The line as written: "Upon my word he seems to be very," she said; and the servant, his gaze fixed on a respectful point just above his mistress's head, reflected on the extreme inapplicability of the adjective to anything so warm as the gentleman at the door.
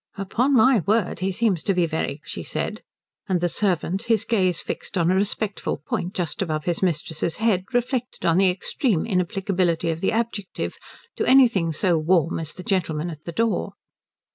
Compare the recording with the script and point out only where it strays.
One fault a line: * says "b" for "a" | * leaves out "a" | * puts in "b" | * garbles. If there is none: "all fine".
all fine